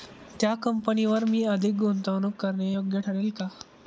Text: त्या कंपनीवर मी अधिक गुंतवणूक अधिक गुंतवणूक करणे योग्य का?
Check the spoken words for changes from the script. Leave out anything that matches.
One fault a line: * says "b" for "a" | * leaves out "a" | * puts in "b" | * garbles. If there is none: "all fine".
* leaves out "अधिक गुंतवणूक"
* puts in "ठरेल"